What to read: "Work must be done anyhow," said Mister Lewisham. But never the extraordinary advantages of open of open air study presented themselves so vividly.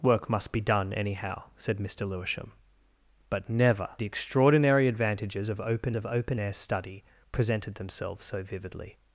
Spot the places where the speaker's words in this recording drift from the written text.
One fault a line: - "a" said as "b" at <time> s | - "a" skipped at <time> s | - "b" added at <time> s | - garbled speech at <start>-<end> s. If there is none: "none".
none